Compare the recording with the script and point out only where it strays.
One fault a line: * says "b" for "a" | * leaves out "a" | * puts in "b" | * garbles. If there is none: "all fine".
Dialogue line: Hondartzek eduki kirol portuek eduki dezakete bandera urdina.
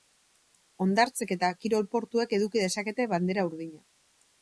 * says "eta" for "eduki"